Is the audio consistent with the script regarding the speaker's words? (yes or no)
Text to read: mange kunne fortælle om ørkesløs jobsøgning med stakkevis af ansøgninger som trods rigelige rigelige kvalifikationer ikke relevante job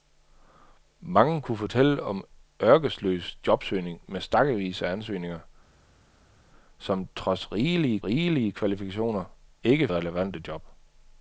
yes